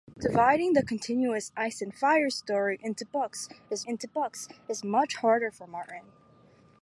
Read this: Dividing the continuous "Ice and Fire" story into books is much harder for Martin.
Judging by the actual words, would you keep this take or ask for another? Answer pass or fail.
fail